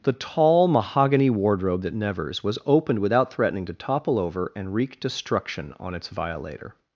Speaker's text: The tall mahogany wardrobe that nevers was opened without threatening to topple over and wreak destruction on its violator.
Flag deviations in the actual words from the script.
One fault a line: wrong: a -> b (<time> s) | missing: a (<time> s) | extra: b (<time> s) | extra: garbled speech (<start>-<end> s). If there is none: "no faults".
no faults